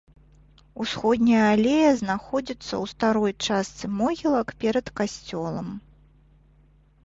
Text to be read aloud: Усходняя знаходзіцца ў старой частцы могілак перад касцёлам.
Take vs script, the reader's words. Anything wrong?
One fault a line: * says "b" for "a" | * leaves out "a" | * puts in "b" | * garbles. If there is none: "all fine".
* puts in "алея"